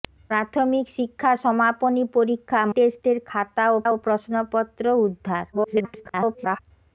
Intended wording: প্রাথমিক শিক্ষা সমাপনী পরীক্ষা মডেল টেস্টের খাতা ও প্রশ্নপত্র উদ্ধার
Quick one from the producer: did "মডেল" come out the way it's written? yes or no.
no